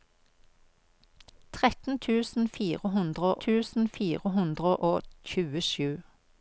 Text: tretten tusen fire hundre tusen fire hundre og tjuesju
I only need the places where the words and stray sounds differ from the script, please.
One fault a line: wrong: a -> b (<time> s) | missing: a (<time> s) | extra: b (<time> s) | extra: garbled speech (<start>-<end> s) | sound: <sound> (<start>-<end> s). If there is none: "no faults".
no faults